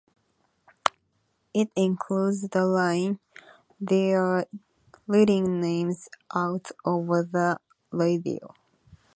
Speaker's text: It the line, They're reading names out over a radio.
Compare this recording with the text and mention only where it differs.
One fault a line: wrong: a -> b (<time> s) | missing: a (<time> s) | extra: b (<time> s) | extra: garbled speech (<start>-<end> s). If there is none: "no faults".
extra: includes (1.8 s)
wrong: a -> the (7.2 s)